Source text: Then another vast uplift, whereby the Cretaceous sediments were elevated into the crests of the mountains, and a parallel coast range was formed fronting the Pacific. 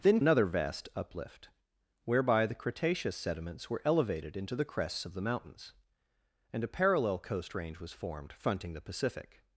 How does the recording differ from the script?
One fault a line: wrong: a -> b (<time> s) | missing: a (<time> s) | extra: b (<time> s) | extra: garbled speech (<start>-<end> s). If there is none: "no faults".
no faults